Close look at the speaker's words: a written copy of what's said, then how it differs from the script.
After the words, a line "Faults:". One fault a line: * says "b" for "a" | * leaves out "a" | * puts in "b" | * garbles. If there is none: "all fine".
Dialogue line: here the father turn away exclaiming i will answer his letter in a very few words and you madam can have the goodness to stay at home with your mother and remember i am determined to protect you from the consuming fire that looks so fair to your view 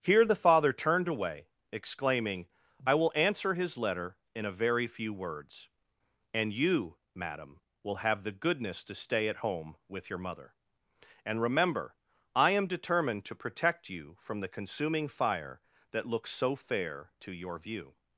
here the father turned away exclaiming i will answer his letter in a very few words and you madam will have the goodness to stay at home with your mother and remember i am determined to protect you from the consuming fire that looks so fair to your view
Faults:
* says "turned" for "turn"
* says "will" for "can"